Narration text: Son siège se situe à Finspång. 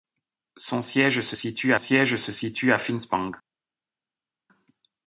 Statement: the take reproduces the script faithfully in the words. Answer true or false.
false